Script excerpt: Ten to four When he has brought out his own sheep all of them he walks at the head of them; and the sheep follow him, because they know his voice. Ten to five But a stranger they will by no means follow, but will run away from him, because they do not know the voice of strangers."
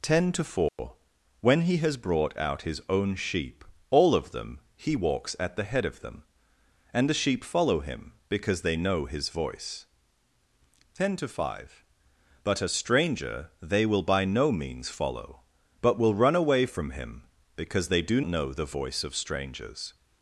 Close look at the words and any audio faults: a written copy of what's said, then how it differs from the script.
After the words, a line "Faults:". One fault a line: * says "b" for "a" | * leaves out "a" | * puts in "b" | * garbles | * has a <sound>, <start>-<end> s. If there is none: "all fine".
Ten to four When he has brought out his own sheep all of them he walks at the head of them; and the sheep follow him, because they know his voice. Ten to five But a stranger they will by no means follow, but will run away from him, because they do know the voice of strangers."
Faults:
* has a dropout, 0.7-0.8 s
* leaves out "not"